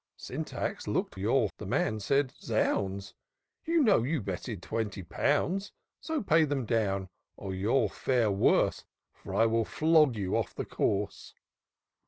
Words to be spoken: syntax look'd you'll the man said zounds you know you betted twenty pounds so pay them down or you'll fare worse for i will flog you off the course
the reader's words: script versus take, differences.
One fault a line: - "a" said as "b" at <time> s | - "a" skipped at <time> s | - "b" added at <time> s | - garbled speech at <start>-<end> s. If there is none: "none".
none